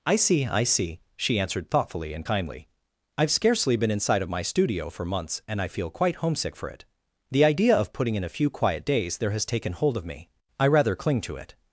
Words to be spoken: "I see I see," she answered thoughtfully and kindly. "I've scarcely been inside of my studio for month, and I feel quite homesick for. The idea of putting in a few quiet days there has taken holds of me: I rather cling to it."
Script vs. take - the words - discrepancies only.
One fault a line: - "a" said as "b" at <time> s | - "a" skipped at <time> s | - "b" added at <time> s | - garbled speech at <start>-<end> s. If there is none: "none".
- "month" said as "months" at 5.0 s
- "it" added at 6.7 s
- "holds" said as "hold" at 9.7 s